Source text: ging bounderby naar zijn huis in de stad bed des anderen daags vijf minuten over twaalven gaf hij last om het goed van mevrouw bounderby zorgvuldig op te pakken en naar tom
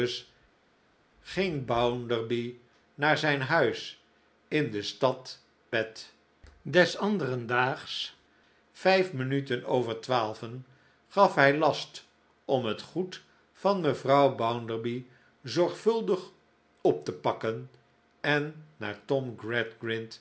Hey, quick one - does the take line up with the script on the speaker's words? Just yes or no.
yes